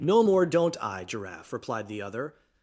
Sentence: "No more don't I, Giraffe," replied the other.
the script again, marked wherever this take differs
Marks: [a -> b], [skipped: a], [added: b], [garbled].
"No more don't I, Giraffe," replied the other.